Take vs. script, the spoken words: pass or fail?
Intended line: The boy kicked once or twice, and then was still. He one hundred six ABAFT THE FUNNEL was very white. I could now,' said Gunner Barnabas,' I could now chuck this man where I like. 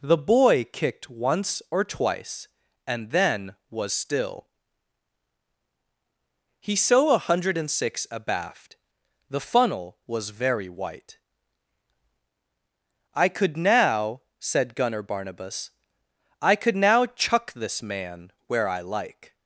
fail